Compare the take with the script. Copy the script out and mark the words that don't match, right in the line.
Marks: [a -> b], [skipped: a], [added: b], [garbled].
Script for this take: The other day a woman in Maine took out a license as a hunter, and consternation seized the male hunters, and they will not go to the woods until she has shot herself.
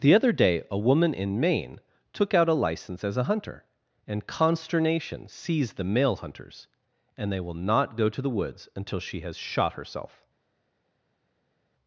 The other day a woman in Maine took out a license as a hunter, and consternation seized the male hunters, and they will not go to the woods until she has shot herself.